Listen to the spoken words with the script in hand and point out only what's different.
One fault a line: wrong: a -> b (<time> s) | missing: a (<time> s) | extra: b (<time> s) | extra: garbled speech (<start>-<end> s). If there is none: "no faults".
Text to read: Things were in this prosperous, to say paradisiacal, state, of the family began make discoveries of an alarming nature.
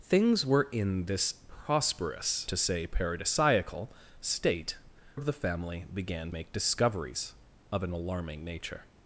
no faults